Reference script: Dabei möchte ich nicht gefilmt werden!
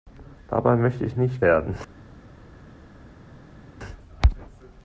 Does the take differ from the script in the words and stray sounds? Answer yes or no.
yes